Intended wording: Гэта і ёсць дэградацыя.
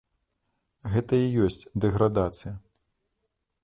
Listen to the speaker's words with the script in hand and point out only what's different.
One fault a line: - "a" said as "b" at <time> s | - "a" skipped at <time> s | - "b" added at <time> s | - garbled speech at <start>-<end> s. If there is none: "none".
none